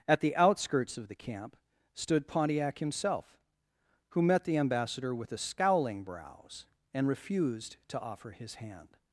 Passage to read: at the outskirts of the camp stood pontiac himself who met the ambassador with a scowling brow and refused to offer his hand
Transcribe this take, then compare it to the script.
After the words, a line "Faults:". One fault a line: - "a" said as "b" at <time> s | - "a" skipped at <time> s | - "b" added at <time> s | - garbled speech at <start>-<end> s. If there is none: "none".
at the outskirts of the camp stood pontiac himself who met the ambassador with a scowling brows and refused to offer his hand
Faults:
- "brow" said as "brows" at 6.0 s